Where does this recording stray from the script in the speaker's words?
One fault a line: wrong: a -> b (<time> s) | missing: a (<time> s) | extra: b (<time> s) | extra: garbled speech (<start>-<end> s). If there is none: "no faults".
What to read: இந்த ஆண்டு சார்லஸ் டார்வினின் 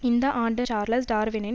no faults